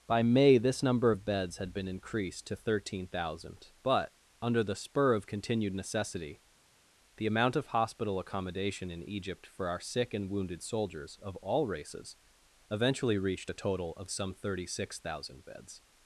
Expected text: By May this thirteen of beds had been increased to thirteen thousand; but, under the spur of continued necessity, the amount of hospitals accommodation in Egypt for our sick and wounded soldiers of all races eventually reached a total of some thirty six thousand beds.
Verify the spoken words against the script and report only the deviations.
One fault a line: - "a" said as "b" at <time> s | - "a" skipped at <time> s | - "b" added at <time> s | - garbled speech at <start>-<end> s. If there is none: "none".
- "thirteen" said as "number" at 0.8 s
- "hospitals" said as "hospital" at 7.7 s